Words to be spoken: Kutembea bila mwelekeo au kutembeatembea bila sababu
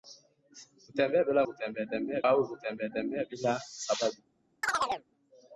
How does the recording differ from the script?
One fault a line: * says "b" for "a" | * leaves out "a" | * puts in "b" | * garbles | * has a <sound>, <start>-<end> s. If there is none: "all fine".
* says "kutembeatembea" for "mwelekeo"
* has a chirp, 4.6-5.1 s